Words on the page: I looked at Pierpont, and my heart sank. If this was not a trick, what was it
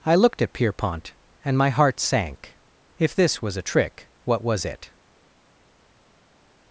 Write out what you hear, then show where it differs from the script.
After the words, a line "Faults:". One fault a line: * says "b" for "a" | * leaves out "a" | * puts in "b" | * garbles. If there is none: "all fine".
I looked at Pierpont, and my heart sank. If this was a trick, what was it
Faults:
* leaves out "not"